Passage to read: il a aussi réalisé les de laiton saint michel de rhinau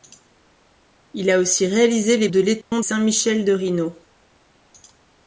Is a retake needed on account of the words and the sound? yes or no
yes